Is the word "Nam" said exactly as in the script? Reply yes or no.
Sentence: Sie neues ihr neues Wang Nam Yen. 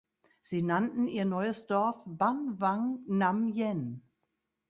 yes